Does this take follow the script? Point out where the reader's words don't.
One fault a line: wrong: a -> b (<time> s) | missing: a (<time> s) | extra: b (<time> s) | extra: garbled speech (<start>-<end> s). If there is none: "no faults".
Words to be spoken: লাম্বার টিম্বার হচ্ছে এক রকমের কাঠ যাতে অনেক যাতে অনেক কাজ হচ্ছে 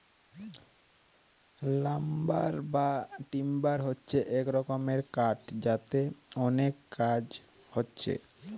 extra: বা (2.7 s)
missing: যাতে অনেক (6.7 s)